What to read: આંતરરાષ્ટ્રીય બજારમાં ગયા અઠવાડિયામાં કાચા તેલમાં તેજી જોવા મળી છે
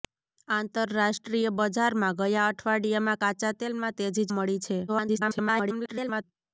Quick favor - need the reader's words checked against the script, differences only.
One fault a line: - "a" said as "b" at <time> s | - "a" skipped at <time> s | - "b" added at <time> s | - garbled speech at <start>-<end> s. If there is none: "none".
- "જોવા" skipped at 4.3 s
- garbled speech at 4.9-6.2 s